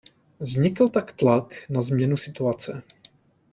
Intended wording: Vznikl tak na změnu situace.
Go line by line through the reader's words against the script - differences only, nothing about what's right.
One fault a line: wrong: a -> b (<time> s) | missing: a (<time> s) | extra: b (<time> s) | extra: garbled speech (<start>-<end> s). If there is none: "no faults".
extra: tlak (1.1 s)